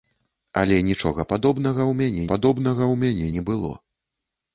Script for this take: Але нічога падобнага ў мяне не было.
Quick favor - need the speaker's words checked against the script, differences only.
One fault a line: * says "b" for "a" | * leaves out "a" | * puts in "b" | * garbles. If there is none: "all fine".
* puts in "падобнага ў мяне"